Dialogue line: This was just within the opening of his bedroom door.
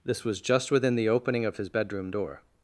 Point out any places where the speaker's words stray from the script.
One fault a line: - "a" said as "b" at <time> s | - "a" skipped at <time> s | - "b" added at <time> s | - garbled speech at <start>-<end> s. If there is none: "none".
none